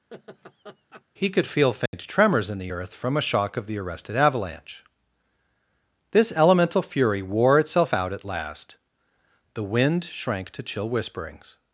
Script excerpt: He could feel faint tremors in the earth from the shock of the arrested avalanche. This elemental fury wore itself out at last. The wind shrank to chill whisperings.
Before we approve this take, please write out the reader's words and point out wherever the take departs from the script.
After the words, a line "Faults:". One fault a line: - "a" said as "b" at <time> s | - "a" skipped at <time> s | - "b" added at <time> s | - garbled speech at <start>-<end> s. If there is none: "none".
He could feel faint tremors in the earth from a shock of the arrested avalanche. This elemental fury wore itself out at last. The wind shrank to chill whisperings.
Faults:
- "the" said as "a" at 3.2 s